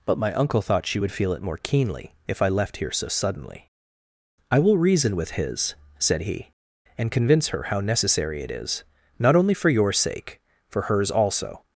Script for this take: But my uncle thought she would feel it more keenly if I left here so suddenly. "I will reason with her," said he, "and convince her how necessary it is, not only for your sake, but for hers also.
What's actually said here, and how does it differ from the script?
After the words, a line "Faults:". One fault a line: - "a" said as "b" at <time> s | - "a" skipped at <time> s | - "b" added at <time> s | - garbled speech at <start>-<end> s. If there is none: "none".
But my uncle thought she would feel it more keenly if I left here so suddenly. "I will reason with his," said he, "and convince her how necessary it is, not only for your sake, for hers also.
Faults:
- "her" said as "his" at 5.3 s
- "but" skipped at 10.4 s